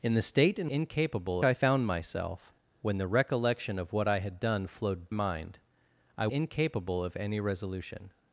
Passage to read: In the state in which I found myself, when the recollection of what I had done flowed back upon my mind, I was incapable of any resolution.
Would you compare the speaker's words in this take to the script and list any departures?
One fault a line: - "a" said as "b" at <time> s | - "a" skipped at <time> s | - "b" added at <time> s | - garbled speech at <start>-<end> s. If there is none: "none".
- "which" said as "incapable" at 0.7 s
- "back upon my" skipped at 5.1 s
- "was" skipped at 6.3 s